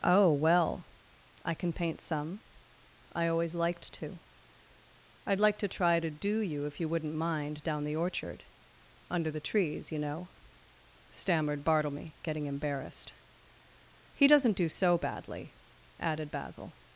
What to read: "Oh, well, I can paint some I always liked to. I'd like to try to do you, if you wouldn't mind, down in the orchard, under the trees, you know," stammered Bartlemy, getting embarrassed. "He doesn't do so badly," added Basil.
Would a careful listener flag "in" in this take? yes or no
yes